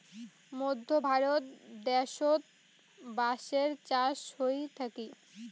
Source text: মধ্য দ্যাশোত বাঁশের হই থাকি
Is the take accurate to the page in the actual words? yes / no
no